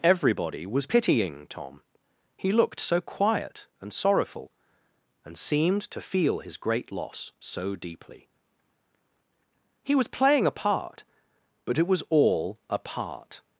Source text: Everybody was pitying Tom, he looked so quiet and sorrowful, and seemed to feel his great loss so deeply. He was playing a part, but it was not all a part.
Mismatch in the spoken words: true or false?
true